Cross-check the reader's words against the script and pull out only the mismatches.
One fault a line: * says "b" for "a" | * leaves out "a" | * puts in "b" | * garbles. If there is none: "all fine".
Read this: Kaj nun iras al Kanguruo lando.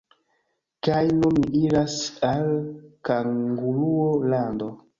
* puts in "ni"